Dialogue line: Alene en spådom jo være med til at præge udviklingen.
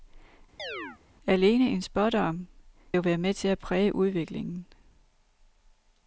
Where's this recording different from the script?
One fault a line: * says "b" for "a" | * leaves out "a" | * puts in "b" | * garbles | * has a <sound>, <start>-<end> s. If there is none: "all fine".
* has a chirp, 0.6-1.0 s